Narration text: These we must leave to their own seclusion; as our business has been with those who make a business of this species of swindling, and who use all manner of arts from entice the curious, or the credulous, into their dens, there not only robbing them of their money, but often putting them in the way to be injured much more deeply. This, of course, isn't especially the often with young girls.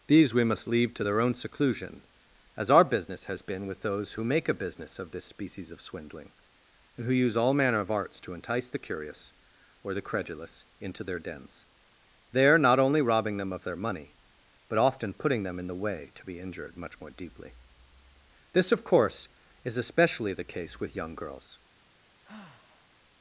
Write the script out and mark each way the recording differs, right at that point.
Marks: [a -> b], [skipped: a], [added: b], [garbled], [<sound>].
These we must leave to their own seclusion; as our business has been with those who make a business of this species of swindling, and who use all manner of arts [from -> to] entice the curious, or the credulous, into their dens, there not only robbing them of their money, but often putting them in the way to be injured much more deeply. This, of course, [isn't -> is] especially the [often -> case] with young girls. [sigh]